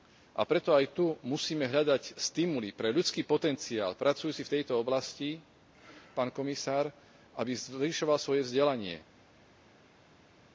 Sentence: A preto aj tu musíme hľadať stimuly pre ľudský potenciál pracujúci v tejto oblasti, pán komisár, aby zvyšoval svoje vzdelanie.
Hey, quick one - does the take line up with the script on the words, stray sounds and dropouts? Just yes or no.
yes